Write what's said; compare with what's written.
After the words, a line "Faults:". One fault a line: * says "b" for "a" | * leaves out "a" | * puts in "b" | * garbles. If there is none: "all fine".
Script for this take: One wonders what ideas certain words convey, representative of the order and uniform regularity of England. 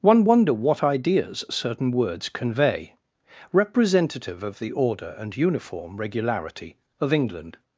One wonder what ideas certain words convey, representative of the order and uniform regularity of England.
Faults:
* says "wonder" for "wonders"